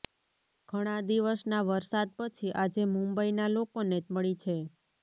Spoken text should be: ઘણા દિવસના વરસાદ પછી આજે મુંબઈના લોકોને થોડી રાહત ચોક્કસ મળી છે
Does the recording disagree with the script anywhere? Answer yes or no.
yes